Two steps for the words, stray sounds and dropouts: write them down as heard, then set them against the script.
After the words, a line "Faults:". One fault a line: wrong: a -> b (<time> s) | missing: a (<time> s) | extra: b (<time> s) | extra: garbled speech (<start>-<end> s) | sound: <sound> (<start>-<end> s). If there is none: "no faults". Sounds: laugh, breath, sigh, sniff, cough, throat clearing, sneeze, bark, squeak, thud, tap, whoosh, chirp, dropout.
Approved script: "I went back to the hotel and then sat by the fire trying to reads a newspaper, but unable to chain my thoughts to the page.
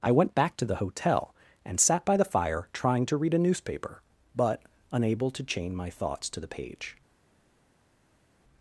"I went back to the hotel and sat by the fire trying to read a newspaper, but unable to chain my thoughts to the page.
Faults:
missing: then (1.8 s)
wrong: reads -> read (3.2 s)